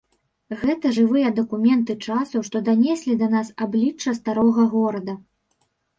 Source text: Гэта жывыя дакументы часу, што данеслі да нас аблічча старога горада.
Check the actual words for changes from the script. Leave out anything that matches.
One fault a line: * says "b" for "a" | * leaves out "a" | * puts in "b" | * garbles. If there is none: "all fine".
all fine